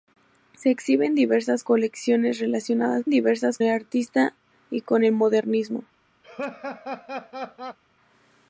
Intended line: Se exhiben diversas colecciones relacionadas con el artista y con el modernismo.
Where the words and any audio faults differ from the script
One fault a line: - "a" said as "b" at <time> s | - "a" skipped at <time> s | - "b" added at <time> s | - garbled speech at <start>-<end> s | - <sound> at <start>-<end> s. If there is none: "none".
- "con" said as "diversas" at 3.1 s
- laugh at 6.2-7.8 s